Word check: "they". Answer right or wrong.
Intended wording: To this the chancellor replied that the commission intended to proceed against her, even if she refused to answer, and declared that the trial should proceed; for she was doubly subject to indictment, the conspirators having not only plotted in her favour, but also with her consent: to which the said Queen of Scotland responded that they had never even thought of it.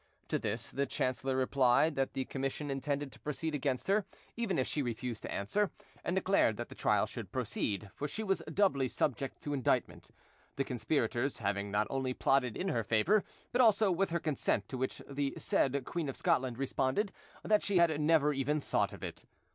wrong